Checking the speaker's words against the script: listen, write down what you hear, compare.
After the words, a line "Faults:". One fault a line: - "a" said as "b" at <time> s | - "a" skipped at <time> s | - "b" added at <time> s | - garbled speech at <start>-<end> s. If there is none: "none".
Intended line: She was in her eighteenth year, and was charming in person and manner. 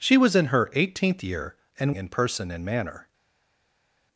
She was in her eighteenth year, and in person and manner.
Faults:
- "was charming" skipped at 1.9 s